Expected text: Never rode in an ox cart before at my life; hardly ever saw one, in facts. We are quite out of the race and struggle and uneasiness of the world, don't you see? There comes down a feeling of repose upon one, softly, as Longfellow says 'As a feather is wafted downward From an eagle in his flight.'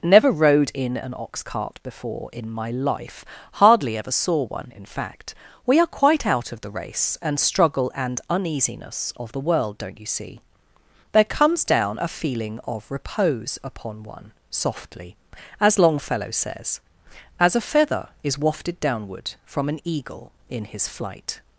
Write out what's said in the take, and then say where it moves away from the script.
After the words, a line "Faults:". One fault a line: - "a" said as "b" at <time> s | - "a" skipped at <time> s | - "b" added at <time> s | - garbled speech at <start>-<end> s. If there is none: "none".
Never rode in an ox cart before in my life; hardly ever saw one, in fact. We are quite out of the race and struggle and uneasiness of the world, don't you see? There comes down a feeling of repose upon one, softly, as Longfellow says 'As a feather is wafted downward From an eagle in his flight.'
Faults:
- "at" said as "in" at 2.3 s
- "facts" said as "fact" at 4.9 s